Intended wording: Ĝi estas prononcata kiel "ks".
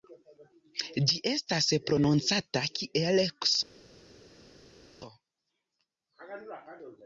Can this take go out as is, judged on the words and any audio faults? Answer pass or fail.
pass